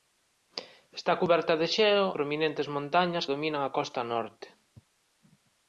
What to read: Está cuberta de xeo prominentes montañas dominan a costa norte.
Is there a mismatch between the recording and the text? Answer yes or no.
no